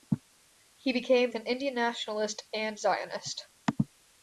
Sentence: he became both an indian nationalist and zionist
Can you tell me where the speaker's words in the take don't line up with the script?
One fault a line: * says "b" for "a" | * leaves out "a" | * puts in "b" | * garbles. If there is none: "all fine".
* leaves out "both"